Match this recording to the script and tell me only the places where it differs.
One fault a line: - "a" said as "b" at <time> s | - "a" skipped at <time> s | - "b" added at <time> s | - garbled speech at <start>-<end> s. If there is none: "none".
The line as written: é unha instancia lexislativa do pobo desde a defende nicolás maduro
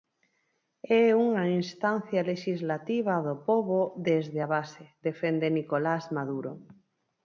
- "base" added at 4.6 s